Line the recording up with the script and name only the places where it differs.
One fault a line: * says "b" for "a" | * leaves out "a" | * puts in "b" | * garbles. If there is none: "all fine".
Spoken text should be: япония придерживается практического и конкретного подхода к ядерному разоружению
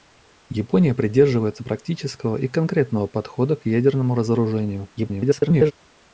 * garbles